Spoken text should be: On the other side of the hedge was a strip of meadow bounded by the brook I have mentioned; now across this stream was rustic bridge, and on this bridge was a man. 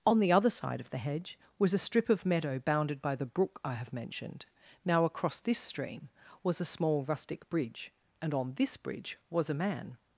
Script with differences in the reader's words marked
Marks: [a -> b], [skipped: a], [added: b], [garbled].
On the other side of the hedge was a strip of meadow bounded by the brook I have mentioned; now across this stream was [added: a small] rustic bridge, and on this bridge was a man.